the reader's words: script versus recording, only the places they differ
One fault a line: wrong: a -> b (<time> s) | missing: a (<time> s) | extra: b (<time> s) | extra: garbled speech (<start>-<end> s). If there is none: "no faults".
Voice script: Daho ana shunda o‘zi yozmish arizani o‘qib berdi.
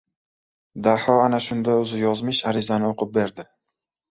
no faults